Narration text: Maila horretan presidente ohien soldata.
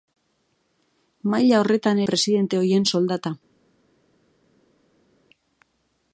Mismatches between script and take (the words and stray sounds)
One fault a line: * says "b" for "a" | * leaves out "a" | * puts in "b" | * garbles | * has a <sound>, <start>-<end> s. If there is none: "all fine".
all fine